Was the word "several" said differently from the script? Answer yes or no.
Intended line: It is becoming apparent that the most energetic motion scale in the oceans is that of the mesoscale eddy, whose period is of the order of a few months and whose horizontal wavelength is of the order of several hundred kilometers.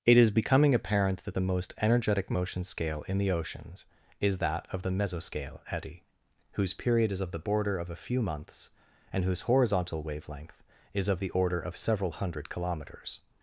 no